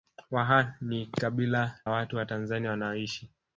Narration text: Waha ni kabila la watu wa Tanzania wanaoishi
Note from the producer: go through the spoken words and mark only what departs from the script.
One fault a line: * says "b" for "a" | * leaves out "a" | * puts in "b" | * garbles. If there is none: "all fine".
* leaves out "la"